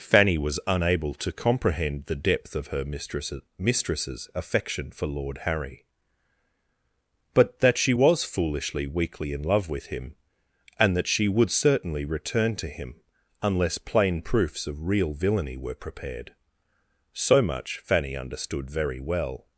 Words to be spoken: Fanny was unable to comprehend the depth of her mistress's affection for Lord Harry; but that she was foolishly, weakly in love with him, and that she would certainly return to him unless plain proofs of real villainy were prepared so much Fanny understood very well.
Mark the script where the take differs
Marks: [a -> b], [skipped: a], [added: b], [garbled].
Fanny was unable to comprehend the depth of her mistress's [added: mistress's] affection for Lord Harry; but that she was foolishly, weakly in love with him, and that she would certainly return to him unless plain proofs of real villainy were prepared so much Fanny understood very well.